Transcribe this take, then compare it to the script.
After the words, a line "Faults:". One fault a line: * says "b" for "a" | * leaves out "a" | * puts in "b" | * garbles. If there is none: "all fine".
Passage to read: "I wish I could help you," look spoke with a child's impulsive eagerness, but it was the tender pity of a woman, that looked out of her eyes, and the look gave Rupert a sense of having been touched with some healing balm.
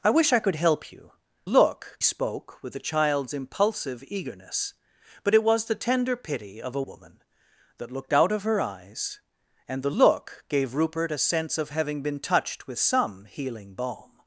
"I wish I could help you," look spoke with a child's impulsive eagerness, but it was the tender pity of a woman, that looked out of her eyes, and the look gave Rupert a sense of having been touched with some healing balm.
Faults:
all fine